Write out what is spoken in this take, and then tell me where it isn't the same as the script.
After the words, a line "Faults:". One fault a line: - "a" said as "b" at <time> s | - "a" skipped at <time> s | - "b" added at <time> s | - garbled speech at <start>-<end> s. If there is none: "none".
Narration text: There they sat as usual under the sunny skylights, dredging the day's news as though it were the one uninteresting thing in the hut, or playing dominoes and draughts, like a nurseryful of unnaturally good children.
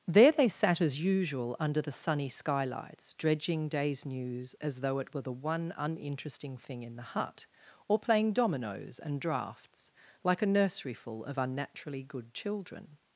There they sat as usual under the sunny skylights, dredging day's news as though it were the one uninteresting thing in the hut, or playing dominoes and draughts, like a nurseryful of unnaturally good children.
Faults:
- "the" skipped at 3.7 s